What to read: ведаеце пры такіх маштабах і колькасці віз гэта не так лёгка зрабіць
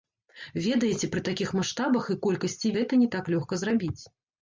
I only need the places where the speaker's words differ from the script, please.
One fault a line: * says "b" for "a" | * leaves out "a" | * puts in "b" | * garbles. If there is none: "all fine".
* leaves out "віз"